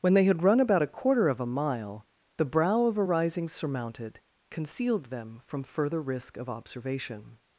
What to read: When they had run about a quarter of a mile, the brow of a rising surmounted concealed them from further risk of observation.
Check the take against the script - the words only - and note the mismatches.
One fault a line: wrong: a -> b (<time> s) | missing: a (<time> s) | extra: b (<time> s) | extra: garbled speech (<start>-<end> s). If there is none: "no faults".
no faults